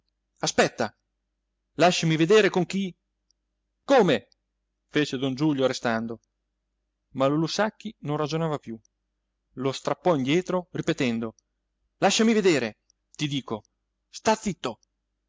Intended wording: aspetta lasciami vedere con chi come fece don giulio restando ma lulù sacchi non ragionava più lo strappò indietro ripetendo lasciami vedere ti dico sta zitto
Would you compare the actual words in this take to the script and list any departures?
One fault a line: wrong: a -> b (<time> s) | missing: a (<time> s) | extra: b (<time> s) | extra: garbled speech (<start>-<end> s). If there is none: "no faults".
no faults